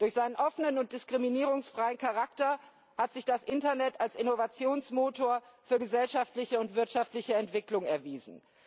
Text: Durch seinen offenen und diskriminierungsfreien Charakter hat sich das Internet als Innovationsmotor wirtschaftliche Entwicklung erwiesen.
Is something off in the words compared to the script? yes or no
yes